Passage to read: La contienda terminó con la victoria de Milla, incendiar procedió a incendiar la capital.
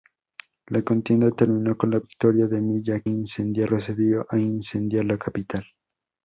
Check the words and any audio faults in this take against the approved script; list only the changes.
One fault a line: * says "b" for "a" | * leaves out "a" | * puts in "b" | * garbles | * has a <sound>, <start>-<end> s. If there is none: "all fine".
all fine